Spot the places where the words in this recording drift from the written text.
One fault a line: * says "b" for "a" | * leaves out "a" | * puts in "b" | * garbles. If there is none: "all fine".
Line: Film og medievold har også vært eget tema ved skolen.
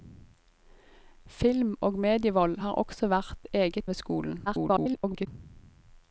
* leaves out "tema"
* garbles